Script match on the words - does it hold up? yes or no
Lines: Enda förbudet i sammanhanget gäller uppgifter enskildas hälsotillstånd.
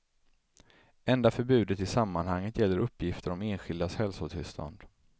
no